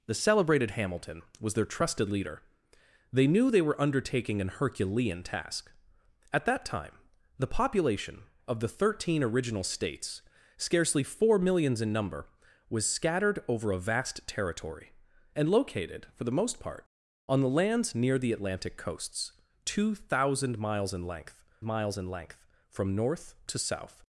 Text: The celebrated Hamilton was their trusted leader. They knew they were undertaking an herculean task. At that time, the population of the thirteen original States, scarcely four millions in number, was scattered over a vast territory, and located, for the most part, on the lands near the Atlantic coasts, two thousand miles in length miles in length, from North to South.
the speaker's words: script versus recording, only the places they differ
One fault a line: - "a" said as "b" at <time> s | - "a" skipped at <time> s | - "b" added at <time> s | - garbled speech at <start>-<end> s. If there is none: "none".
none